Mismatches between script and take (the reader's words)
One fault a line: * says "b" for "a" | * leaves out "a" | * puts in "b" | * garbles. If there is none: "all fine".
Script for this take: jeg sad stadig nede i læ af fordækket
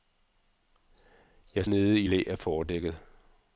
* leaves out "sad stadig"